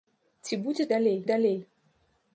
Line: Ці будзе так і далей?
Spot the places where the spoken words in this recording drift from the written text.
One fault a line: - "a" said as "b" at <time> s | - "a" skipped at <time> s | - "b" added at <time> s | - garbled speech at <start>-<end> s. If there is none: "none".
- "так" said as "далей" at 0.9 s